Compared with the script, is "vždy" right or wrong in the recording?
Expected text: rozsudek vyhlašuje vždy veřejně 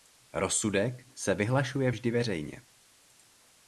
right